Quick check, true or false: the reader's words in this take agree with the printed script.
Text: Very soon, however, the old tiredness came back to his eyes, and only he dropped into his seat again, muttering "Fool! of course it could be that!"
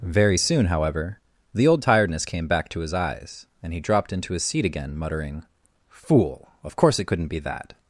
false